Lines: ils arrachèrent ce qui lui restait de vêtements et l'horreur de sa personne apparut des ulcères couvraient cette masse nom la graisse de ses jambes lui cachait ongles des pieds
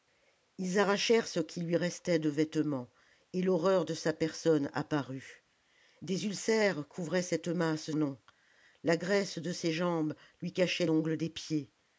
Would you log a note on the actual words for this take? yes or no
no